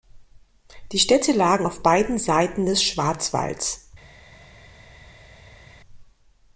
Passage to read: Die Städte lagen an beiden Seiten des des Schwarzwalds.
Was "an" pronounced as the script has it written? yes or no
no